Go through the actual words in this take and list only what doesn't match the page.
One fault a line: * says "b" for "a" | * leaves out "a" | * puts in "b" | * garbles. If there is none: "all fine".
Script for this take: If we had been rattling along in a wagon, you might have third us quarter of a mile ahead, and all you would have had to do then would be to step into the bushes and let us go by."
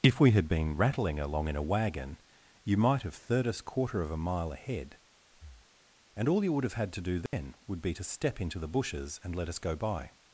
all fine